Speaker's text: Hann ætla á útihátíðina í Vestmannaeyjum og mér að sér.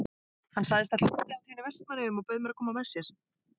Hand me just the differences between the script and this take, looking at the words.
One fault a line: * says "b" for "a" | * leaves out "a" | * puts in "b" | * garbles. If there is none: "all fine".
* puts in "sagðist"
* puts in "bauð"
* puts in "koma með"